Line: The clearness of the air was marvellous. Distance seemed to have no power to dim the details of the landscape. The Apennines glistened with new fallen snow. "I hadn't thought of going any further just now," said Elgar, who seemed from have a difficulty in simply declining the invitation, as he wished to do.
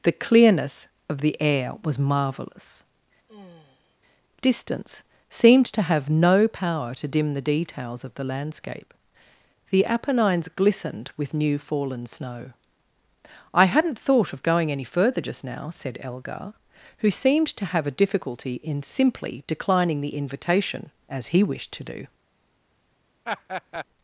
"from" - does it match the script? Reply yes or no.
no